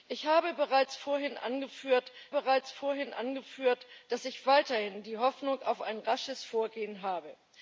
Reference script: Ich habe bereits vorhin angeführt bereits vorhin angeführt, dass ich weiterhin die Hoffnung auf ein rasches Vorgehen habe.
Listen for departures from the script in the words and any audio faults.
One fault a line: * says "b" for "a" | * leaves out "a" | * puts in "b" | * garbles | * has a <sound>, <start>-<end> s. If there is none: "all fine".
all fine